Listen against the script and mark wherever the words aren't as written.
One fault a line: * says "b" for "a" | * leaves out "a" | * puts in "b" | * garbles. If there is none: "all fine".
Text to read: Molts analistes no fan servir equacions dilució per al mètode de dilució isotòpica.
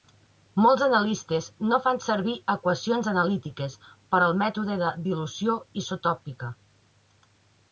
* says "analítiques" for "dilució"